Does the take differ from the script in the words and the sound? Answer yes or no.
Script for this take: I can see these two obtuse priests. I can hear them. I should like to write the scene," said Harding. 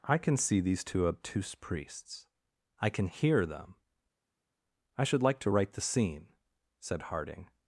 no